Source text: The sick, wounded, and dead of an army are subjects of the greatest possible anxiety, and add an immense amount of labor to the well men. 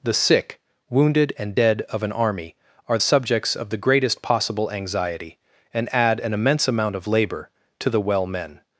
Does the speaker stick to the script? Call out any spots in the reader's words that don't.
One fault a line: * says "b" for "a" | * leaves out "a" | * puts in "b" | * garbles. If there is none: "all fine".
all fine